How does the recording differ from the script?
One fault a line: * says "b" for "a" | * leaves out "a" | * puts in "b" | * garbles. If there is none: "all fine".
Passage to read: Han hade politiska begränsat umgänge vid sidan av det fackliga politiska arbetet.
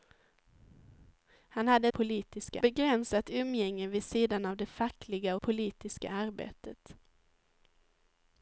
all fine